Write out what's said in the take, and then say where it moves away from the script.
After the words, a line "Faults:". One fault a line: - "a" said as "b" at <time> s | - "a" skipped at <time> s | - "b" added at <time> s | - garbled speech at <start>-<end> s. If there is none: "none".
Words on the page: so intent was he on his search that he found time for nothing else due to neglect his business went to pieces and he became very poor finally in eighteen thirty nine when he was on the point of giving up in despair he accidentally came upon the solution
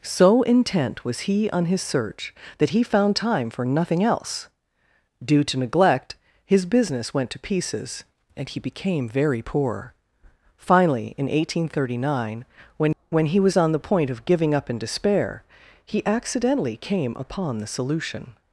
so intent was he on his search that he found time for nothing else due to neglect his business went to pieces and he became very poor finally in eighteen thirty nine when when he was on the point of giving up in despair he accidentally came upon the solution
Faults:
- "when" added at 13.1 s